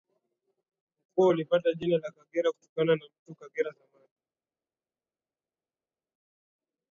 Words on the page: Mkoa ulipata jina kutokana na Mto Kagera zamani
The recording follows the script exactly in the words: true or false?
false